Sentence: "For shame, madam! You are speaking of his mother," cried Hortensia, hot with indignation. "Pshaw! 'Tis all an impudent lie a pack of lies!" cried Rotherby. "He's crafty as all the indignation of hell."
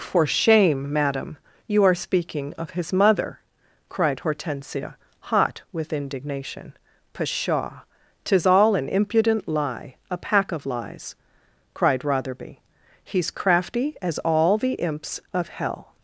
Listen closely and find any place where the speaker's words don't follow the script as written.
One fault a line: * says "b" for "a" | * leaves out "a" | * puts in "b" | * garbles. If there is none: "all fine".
* says "imps" for "indignation"